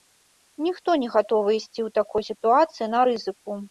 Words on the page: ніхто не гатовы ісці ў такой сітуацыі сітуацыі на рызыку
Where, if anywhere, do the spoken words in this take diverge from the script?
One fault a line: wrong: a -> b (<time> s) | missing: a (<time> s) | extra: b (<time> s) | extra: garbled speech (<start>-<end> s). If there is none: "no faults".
missing: сітуацыі (2.9 s)